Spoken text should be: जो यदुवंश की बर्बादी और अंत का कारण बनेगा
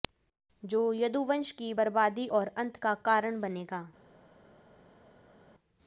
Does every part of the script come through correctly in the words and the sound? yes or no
yes